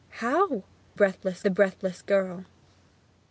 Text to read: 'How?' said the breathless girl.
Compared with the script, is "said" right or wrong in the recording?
wrong